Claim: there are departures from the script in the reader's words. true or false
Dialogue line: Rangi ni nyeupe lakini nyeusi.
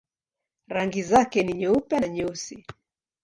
true